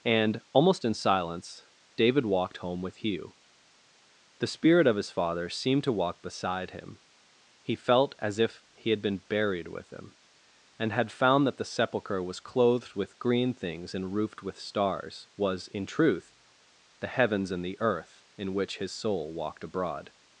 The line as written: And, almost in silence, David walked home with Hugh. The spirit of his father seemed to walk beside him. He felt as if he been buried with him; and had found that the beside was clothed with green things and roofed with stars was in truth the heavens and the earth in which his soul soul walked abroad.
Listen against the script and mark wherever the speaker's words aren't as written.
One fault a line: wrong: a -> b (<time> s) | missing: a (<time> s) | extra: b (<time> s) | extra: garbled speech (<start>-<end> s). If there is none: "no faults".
extra: had (8.9 s)
wrong: beside -> sepulchre (11.7 s)
missing: soul (19.3 s)